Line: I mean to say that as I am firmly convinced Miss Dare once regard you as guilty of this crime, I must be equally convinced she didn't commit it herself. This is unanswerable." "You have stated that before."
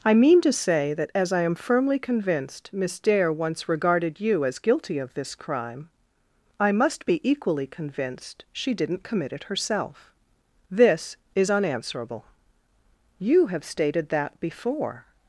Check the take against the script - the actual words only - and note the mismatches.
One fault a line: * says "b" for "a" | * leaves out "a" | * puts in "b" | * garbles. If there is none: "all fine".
* says "regarded" for "regard"